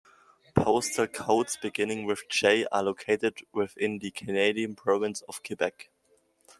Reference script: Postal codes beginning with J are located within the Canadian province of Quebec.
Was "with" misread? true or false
false